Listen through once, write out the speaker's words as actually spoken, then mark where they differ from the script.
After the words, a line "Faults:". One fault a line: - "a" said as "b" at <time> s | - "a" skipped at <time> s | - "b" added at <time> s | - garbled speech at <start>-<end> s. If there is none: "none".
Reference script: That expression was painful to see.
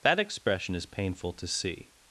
That expression is painful to see.
Faults:
- "was" said as "is" at 0.7 s